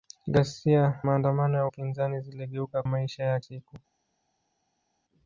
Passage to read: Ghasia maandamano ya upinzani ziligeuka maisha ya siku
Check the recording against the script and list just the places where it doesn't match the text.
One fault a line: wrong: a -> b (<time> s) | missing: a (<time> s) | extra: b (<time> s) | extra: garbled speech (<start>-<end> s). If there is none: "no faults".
no faults